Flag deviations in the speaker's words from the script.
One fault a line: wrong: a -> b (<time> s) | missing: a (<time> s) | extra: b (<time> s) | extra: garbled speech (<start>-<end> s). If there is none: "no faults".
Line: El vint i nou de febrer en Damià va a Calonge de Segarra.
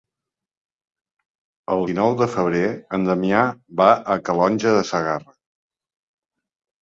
missing: vint (1.9 s)